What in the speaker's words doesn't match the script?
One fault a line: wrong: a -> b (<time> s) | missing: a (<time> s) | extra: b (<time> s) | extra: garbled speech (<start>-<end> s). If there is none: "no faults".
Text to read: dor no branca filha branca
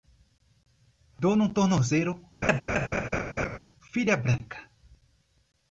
wrong: branca -> tornozelo (1.5 s)